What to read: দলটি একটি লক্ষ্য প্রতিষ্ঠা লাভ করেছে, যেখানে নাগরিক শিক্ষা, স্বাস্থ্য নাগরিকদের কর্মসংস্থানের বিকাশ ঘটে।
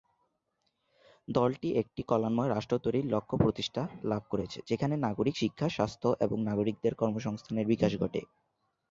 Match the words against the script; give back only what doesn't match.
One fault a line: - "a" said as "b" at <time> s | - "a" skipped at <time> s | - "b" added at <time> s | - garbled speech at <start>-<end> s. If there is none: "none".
- "কল্যাণময় রাষ্ট্র তৈরির" added at 2.0 s
- "এবং" added at 6.2 s